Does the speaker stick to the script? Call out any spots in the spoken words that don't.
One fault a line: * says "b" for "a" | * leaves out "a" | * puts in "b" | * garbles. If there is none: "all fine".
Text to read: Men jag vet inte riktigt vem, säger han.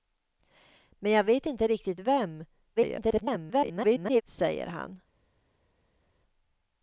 * garbles